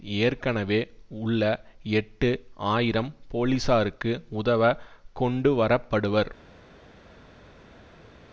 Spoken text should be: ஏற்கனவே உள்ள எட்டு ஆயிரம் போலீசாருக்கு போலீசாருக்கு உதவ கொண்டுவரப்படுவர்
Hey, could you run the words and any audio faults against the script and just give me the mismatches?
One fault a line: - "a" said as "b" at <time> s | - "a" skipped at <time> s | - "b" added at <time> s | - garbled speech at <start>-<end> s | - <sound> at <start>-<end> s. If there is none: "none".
- "போலீசாருக்கு" skipped at 4.1 s